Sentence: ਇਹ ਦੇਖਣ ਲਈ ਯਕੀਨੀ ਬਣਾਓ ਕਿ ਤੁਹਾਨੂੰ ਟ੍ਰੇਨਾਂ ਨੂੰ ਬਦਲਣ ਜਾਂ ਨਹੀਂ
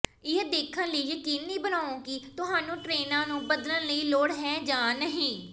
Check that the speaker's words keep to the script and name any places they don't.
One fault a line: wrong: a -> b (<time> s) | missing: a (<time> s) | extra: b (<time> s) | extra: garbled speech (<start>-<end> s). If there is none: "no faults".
extra: ਦੀ ਲੋੜ ਹੈ (3.9 s)